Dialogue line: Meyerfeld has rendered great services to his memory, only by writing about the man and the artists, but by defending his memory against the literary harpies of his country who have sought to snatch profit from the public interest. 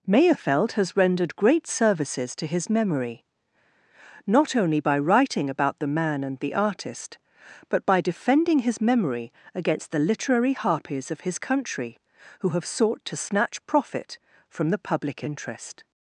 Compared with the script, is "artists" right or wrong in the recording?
wrong